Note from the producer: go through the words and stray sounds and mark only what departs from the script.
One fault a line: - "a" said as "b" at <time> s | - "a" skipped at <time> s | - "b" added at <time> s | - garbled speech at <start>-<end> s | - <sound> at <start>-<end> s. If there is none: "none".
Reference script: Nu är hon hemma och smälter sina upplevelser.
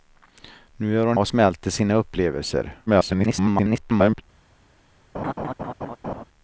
- "hemma" skipped at 1.2 s
- garbled speech at 2.9-4.2 s
- laugh at 5.1-6.2 s